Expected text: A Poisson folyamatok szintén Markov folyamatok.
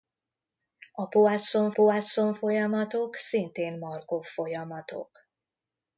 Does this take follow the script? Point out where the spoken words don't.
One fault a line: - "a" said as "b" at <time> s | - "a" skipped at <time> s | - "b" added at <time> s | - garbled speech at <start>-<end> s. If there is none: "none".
- "Poisson" added at 1.7 s